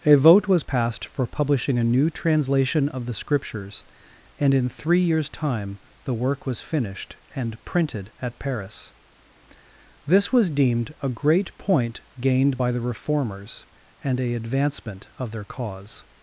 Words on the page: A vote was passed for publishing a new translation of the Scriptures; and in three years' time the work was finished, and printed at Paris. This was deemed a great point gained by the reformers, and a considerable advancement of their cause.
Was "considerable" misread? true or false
true